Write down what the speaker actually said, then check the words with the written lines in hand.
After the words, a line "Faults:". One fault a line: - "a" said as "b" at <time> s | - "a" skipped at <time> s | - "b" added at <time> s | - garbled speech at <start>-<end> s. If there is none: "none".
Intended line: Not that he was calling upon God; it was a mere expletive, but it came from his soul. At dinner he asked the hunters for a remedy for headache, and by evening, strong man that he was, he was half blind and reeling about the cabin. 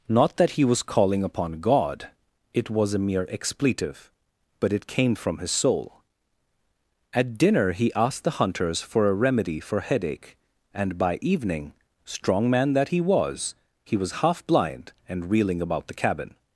Not that he was calling upon God; it was a mere expletive, but it came from his soul. At dinner he asked the hunters for a remedy for headache, and by evening, strong man that he was, he was half blind and reeling about the cabin.
Faults:
none